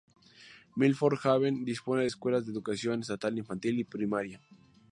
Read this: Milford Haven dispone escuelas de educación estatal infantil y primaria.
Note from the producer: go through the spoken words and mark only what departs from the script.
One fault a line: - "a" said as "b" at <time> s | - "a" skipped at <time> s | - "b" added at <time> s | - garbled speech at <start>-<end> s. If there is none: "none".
none